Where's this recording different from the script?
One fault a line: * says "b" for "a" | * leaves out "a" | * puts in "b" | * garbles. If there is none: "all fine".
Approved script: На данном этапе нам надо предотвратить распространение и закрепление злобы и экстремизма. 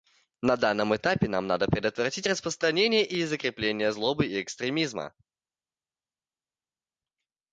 all fine